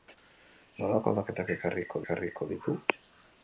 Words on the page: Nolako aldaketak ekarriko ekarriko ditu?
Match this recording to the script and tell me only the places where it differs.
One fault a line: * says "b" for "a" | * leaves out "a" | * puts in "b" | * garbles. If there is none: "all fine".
all fine